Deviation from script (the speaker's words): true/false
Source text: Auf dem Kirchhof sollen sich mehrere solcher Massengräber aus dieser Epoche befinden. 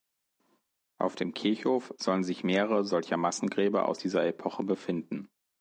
false